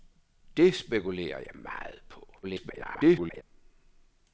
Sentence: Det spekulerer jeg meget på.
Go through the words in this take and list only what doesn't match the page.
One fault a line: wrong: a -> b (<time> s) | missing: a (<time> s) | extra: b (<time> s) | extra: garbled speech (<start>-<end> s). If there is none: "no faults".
extra: garbled speech (2.4-3.4 s)